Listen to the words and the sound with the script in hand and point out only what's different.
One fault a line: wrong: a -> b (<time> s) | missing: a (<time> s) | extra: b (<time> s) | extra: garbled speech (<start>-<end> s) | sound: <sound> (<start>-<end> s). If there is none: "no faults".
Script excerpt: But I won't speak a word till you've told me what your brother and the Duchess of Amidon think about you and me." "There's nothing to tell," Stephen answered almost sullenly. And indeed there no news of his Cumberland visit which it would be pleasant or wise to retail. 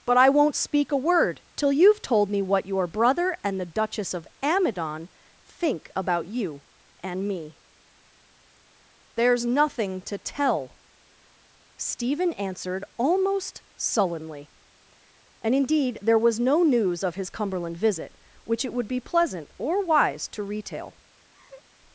extra: was (16.2 s)
sound: laugh (21.3-21.6 s)